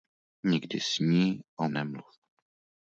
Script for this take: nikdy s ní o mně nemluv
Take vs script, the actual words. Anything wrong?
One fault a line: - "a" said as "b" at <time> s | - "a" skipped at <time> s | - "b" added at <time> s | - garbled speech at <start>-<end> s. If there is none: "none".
- "mně" skipped at 1.7 s